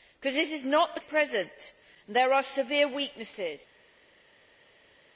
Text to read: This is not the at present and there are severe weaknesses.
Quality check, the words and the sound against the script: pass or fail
pass